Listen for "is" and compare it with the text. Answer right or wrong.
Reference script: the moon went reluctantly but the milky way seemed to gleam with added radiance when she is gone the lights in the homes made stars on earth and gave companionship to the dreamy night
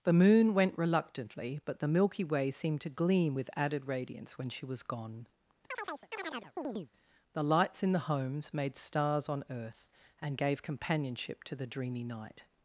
wrong